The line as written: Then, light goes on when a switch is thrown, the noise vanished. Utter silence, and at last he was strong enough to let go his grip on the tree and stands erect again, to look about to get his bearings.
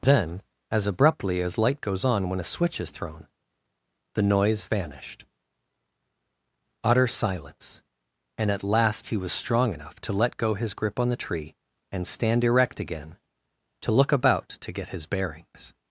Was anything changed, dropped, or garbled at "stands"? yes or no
yes